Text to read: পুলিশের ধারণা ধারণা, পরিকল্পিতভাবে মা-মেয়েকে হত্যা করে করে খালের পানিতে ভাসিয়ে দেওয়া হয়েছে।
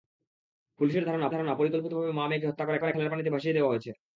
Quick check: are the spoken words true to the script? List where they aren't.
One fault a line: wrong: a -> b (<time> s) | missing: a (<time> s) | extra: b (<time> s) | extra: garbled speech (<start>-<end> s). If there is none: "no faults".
no faults